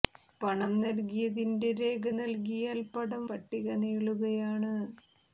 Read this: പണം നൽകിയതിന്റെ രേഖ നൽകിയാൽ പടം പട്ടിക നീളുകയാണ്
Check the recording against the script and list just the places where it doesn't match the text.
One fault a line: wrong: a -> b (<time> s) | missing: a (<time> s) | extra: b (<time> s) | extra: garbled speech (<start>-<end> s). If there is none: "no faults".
no faults